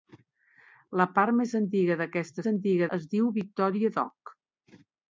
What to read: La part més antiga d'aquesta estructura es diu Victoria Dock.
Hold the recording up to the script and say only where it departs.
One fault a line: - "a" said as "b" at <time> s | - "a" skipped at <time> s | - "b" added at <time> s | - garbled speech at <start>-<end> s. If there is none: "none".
- "estructura" said as "antiga" at 2.5 s